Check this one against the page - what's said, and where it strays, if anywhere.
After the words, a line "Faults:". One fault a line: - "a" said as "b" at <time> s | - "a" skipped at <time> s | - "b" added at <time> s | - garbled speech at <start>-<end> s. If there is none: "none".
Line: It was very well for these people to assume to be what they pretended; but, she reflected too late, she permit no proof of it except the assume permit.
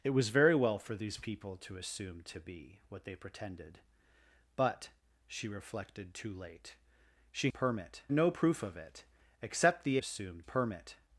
It was very well for these people to assume to be what they pretended; but, she reflected too late, she permit no proof of it except the assume permit.
Faults:
none